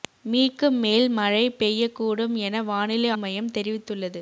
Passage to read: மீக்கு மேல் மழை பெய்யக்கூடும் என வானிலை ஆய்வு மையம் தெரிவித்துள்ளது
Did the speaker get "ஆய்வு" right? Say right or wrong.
wrong